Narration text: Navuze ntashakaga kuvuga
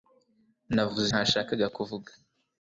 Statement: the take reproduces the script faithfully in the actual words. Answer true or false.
true